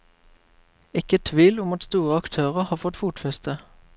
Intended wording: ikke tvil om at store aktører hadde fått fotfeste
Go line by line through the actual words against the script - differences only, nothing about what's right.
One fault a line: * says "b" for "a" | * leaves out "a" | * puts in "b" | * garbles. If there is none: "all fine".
* says "har" for "hadde"